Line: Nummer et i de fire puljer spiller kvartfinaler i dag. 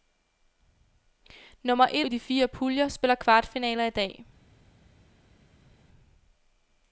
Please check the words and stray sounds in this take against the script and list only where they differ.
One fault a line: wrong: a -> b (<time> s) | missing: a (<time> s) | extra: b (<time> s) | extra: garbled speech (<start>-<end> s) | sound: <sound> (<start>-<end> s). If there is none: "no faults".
no faults